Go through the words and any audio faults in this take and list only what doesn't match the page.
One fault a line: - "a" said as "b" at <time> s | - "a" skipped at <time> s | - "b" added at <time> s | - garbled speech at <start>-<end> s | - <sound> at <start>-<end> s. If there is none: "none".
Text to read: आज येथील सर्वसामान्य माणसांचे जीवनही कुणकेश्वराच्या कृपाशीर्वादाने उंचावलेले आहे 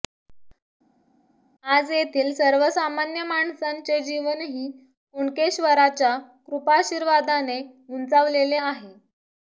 none